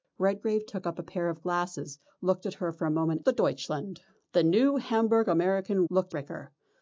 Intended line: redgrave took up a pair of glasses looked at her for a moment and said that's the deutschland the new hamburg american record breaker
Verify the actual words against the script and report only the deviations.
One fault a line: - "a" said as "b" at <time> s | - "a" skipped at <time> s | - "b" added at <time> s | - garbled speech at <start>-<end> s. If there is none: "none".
- "and said that's" skipped at 3.2 s
- "record" said as "looked" at 5.9 s